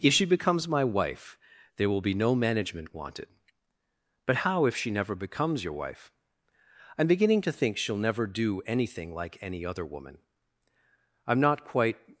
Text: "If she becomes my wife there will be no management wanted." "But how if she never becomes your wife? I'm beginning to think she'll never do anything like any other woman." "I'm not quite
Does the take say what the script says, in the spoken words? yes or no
yes